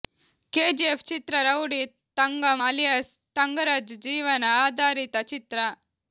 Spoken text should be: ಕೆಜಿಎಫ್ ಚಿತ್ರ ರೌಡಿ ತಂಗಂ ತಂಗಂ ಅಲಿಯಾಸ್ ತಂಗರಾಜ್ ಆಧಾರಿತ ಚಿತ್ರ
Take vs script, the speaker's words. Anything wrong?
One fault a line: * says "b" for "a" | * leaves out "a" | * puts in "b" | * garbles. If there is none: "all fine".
* leaves out "ತಂಗಂ"
* puts in "ಜೀವನ"